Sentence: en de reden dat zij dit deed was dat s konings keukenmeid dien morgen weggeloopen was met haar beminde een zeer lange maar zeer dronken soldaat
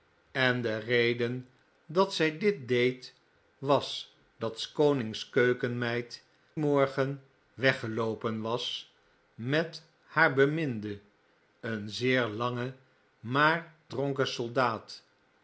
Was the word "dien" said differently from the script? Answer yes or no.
yes